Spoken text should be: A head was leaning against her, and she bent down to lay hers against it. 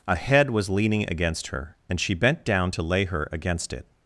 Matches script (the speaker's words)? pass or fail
fail